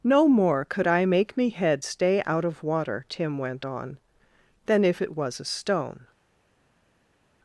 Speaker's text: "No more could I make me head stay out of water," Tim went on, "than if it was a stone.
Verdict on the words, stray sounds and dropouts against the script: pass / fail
pass